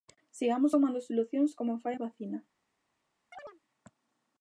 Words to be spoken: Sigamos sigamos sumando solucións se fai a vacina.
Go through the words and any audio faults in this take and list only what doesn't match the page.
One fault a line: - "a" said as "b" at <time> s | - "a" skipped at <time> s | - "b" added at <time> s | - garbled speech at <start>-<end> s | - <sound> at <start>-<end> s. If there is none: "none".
- "sigamos" skipped at 0.7 s
- "se" said as "como" at 1.6 s
- chirp at 3.3-3.6 s